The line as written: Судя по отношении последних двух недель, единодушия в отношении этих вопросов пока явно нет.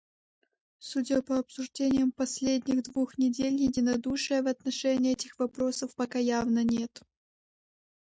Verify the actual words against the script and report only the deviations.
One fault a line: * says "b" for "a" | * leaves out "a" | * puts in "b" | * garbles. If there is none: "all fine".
* says "обсуждениям" for "отношении"